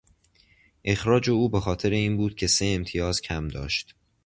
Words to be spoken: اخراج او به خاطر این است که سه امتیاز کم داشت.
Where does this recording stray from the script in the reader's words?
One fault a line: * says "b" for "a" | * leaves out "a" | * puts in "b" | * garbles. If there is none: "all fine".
* says "بود" for "است"